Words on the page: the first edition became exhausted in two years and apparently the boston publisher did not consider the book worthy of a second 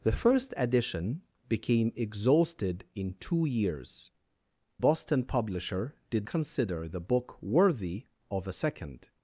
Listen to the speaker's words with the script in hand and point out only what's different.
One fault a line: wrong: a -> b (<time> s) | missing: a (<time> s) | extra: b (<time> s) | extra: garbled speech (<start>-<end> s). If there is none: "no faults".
missing: and apparently the (4.1 s)
missing: not (6.3 s)